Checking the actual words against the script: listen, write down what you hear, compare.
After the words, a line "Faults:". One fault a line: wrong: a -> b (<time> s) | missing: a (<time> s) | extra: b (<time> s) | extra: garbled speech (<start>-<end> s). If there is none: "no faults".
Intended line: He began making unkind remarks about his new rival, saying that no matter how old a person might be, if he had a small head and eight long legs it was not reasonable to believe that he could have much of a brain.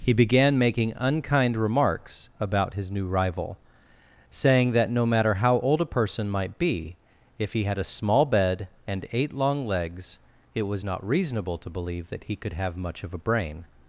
He began making unkind remarks about his new rival, saying that no matter how old a person might be, if he had a small bed and eight long legs it was not reasonable to believe that he could have much of a brain.
Faults:
wrong: head -> bed (8.2 s)